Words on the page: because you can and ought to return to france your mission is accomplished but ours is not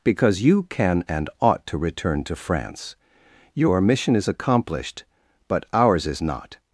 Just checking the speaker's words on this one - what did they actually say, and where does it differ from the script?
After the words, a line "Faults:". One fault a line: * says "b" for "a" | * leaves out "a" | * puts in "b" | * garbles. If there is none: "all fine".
because you can and ought to return to france your mission is accomplished but ours is not
Faults:
all fine